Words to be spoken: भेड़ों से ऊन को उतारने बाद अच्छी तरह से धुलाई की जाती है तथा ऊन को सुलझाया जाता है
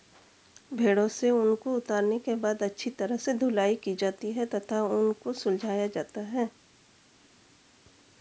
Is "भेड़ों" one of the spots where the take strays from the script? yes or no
no